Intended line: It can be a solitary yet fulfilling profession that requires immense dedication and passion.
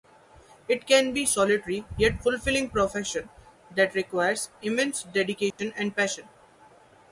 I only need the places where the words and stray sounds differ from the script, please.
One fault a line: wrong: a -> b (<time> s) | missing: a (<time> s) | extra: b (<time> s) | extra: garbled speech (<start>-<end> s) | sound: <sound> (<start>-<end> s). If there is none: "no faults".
sound: dropout (5.5-5.6 s)